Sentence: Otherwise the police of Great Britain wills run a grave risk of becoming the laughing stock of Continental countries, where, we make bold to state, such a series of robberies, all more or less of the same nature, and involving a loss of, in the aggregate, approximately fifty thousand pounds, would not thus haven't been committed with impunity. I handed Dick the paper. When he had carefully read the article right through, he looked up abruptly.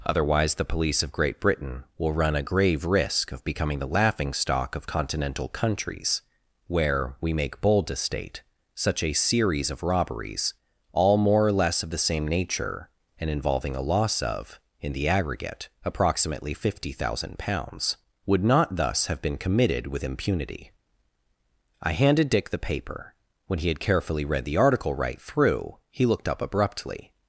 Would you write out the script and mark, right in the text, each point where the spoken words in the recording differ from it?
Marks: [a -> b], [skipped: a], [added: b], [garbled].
Otherwise the police of Great Britain [wills -> will] run a grave risk of becoming the laughing stock of Continental countries, where, we make bold to state, such a series of robberies, all more or less of the same nature, and involving a loss of, in the aggregate, approximately fifty thousand pounds, would not thus [haven't -> have] been committed with impunity. I handed Dick the paper. When he had carefully read the article right through, he looked up abruptly.